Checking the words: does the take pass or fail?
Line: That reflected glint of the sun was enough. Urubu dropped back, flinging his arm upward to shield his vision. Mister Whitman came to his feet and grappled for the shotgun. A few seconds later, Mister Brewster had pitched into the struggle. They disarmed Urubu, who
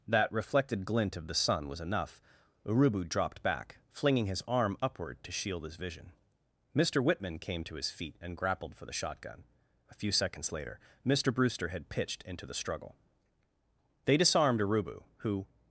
pass